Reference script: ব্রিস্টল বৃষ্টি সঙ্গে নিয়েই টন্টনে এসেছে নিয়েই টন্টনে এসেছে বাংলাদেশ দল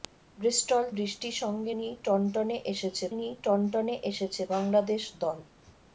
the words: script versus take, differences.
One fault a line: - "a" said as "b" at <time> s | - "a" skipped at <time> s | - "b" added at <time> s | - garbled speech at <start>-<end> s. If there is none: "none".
none